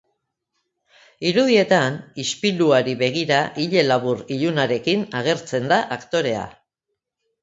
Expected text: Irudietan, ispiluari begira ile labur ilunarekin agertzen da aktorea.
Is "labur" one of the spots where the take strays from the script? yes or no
no